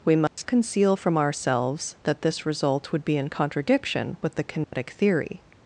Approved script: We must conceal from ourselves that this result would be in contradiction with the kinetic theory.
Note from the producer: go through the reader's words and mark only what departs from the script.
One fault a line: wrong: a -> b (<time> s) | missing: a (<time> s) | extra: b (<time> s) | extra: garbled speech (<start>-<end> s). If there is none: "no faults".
no faults